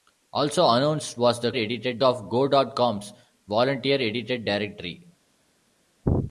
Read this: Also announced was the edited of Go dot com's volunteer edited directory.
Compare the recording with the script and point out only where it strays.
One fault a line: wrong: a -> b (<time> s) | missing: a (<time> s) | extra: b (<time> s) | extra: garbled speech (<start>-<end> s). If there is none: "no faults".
no faults